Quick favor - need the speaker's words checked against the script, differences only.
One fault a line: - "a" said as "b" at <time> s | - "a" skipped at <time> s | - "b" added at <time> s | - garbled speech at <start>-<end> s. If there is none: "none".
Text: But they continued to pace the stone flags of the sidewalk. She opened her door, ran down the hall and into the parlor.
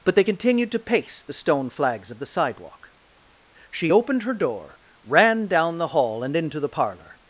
none